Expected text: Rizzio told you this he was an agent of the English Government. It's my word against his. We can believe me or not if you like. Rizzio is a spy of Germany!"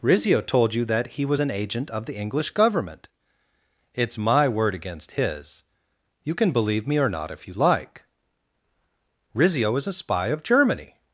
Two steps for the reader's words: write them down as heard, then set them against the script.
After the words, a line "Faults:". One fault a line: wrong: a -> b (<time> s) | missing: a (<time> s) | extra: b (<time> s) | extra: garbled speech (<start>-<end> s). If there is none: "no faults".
Rizzio told you that he was an agent of the English Government. It's my word against his. You can believe me or not if you like. Rizzio is a spy of Germany!"
Faults:
wrong: this -> that (0.8 s)
wrong: We -> You (6.2 s)